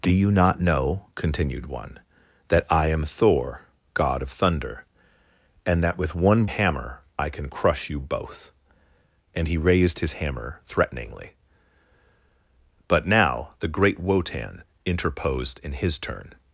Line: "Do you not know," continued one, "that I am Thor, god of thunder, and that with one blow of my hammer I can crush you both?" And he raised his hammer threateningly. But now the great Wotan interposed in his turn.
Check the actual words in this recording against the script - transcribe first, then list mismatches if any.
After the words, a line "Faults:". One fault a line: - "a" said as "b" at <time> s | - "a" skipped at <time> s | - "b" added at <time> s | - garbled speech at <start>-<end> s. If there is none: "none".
"Do you not know," continued one, "that I am Thor, god of thunder, and that with one hammer I can crush you both?" And he raised his hammer threateningly. But now the great Wotan interposed in his turn.
Faults:
- "blow of my" skipped at 6.4 s